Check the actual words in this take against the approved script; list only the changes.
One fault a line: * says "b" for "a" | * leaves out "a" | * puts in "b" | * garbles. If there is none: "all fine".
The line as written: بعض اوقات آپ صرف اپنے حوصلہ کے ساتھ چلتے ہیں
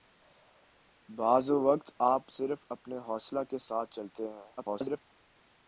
* garbles